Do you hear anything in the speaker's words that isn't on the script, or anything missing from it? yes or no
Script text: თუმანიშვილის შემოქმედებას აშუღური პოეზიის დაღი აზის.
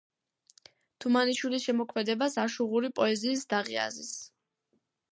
no